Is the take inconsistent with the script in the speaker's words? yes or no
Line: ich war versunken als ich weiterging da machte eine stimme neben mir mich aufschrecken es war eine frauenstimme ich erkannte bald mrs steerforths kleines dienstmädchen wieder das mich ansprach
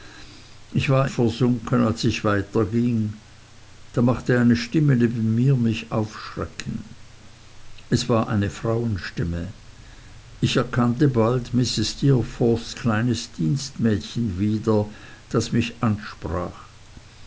no